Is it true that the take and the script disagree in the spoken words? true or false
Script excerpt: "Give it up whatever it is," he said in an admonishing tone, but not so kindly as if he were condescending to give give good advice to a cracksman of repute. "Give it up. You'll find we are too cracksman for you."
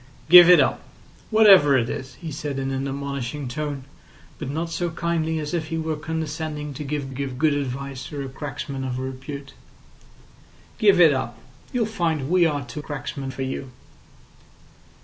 false